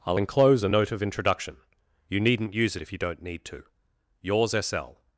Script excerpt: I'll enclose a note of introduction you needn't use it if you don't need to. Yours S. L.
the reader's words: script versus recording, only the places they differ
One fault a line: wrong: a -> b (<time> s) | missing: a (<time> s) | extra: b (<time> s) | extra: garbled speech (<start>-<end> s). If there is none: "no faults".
no faults